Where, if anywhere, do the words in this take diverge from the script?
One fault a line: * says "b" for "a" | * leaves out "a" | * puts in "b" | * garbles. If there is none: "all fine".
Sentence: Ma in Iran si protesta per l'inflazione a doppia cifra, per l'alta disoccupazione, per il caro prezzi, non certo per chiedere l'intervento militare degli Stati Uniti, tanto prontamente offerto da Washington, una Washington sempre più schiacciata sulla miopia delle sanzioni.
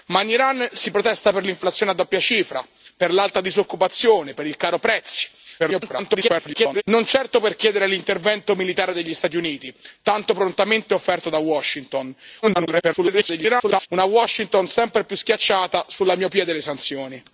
* garbles
* garbles